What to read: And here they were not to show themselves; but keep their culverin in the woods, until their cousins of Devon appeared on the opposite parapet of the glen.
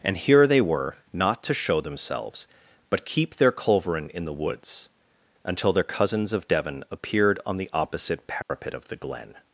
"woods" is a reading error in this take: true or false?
false